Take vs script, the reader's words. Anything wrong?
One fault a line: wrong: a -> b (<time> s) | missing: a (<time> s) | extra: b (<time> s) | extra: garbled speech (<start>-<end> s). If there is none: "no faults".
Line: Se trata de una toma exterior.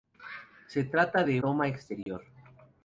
missing: una (1.4 s)